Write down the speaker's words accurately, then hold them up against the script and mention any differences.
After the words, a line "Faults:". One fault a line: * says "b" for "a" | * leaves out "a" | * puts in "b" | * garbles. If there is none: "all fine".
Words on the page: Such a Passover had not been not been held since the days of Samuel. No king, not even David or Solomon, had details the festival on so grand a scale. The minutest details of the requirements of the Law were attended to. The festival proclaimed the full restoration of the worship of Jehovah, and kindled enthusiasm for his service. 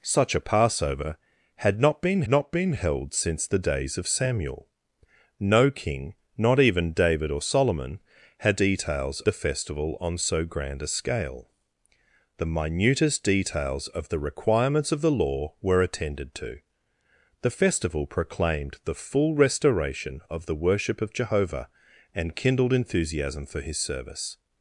Such a Passover had not been not been held since the days of Samuel. No king, not even David or Solomon, had details the festival on so grand a scale. The minutest details of the requirements of the Law were attended to. The festival proclaimed the full restoration of the worship of Jehovah, and kindled enthusiasm for his service.
Faults:
all fine